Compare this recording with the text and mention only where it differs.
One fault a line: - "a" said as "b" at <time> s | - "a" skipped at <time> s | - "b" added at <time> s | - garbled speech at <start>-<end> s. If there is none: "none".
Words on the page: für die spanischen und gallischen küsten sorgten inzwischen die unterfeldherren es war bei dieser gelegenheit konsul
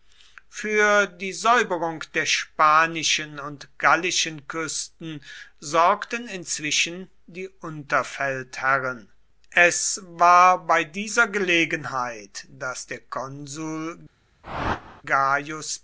- "säuberung der" added at 1.3 s
- "daß der" added at 12.5 s